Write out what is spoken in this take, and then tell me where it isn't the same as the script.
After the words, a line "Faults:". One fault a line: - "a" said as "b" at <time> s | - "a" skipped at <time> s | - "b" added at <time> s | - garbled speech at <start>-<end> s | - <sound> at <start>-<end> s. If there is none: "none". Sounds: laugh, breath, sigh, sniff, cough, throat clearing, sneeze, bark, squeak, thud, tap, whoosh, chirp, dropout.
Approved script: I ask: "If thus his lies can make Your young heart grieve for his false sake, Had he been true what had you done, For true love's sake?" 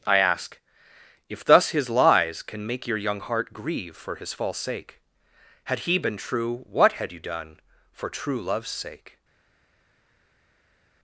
I ask: "If thus his lies can make Your young heart grieve for his false sake, Had he been true what had you done, For true love's sake?"
Faults:
none